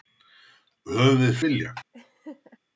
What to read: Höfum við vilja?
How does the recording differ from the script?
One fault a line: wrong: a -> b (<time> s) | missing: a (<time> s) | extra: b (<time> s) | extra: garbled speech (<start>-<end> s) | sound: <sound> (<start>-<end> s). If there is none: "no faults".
sound: laugh (1.9-2.6 s)